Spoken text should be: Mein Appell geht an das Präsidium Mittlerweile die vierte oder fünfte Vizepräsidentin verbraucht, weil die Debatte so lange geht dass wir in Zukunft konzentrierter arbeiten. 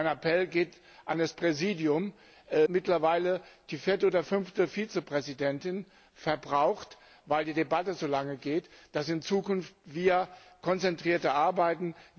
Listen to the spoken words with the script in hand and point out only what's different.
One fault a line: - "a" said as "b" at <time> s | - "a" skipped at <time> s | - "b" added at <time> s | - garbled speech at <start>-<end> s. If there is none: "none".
none